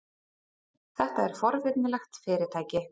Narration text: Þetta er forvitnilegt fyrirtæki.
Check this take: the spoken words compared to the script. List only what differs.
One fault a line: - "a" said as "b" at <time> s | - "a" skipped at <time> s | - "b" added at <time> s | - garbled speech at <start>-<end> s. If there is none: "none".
none